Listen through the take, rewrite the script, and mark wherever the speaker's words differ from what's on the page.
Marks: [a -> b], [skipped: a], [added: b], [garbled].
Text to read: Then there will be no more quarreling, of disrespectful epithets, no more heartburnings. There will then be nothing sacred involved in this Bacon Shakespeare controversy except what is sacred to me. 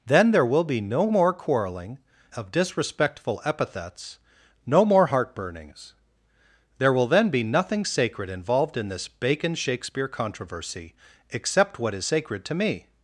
Then there will be no more quarreling, of disrespectful epithets, no more heartburnings. There will then be nothing sacred involved in this Bacon Shakespeare controversy except what is sacred to me.